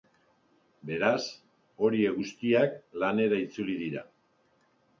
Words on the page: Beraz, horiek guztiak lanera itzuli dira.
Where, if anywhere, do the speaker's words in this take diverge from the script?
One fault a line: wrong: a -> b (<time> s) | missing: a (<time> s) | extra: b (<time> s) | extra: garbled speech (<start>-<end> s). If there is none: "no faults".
no faults